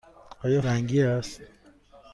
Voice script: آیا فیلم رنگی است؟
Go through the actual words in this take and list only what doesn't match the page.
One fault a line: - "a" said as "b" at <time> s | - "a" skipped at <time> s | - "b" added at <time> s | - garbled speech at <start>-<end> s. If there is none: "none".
- "فیلم" skipped at 0.6 s